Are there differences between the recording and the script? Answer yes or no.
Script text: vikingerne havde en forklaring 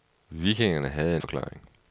no